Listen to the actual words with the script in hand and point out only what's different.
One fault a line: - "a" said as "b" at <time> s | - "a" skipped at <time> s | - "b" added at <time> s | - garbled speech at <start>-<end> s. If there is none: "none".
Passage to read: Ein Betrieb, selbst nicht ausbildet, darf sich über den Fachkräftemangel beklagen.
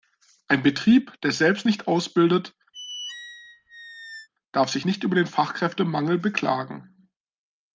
- "der" added at 1.2 s
- "nicht" added at 4.8 s